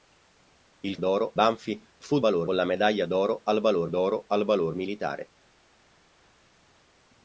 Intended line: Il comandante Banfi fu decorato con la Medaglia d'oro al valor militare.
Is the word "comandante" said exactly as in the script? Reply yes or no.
no